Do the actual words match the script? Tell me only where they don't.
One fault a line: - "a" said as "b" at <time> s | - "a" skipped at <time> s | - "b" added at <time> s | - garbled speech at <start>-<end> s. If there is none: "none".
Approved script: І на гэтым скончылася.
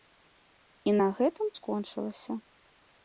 none